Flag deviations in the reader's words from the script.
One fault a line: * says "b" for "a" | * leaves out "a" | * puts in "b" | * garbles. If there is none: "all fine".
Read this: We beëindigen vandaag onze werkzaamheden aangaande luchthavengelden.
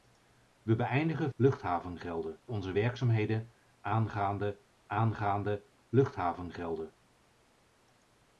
* says "luchthavengelden" for "vandaag"
* puts in "aangaande"